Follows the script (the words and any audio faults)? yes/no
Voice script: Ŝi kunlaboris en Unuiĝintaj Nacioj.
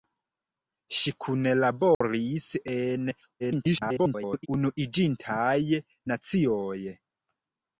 no